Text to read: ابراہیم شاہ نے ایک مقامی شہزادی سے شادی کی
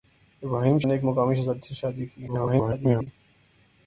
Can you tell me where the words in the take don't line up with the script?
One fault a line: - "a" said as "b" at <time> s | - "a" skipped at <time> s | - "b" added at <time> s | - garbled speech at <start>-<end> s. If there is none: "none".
- "شاہ" skipped at 0.8 s
- garbled speech at 2.3-3.1 s